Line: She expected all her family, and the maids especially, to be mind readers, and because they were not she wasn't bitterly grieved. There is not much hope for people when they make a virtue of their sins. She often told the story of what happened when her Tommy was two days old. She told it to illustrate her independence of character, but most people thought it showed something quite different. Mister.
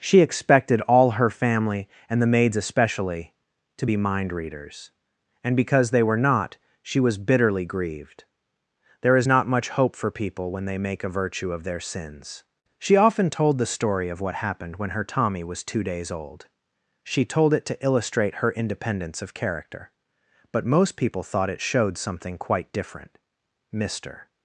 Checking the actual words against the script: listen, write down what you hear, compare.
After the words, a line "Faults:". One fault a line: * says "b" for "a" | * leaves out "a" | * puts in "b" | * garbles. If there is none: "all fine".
She expected all her family, and the maids especially, to be mind readers, and because they were not she was bitterly grieved. There is not much hope for people when they make a virtue of their sins. She often told the story of what happened when her Tommy was two days old. She told it to illustrate her independence of character, but most people thought it showed something quite different. Mister.
Faults:
* says "was" for "wasn't"